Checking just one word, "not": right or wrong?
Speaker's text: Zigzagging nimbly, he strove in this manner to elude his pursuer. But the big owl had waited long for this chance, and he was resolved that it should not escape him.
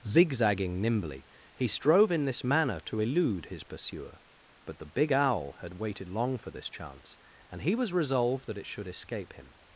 wrong